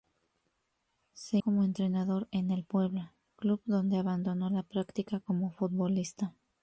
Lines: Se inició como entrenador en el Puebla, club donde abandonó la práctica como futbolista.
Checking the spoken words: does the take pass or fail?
fail